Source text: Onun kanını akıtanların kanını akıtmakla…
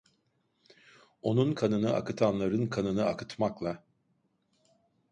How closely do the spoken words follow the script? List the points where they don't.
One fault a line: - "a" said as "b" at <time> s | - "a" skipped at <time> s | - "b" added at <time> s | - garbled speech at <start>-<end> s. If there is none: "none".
none